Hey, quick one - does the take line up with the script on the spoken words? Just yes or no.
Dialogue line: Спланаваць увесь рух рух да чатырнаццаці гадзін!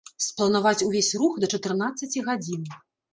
no